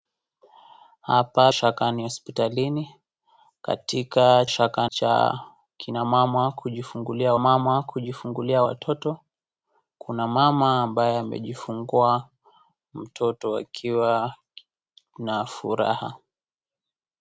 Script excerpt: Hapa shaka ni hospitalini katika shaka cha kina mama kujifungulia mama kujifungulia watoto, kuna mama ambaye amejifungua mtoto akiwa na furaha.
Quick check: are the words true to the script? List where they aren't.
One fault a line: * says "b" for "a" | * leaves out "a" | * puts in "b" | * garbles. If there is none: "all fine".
all fine